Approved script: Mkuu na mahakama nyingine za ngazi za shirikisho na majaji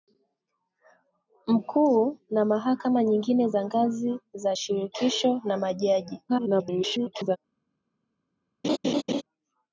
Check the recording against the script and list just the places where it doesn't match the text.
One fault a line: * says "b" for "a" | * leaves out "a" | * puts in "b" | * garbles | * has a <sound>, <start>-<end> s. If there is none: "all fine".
* garbles
* has a laugh, 8.6-9.2 s